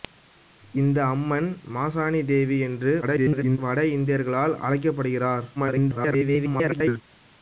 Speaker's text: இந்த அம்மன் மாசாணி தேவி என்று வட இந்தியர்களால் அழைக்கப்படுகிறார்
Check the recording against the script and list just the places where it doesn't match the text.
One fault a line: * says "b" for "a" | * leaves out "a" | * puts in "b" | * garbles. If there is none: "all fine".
* garbles
* garbles